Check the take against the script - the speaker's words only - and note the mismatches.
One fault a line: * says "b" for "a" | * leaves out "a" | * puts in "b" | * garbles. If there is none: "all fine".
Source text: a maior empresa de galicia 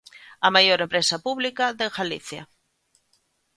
* puts in "pública"